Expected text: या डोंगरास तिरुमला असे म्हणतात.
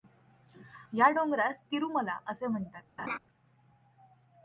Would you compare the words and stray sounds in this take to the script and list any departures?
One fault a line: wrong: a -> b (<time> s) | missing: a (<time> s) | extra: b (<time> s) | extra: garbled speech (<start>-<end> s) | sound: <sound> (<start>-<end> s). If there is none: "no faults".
sound: laugh (3.0-3.2 s)